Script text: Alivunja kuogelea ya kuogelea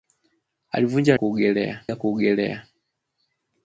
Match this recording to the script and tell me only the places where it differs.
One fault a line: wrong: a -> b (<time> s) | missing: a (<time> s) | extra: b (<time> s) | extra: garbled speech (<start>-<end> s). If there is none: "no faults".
no faults